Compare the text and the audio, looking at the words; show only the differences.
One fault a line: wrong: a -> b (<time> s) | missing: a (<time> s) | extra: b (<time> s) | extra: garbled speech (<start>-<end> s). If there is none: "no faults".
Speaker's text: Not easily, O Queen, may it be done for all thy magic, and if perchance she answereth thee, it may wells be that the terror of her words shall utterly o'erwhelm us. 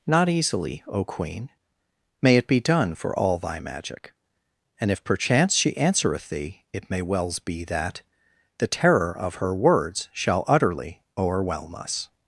no faults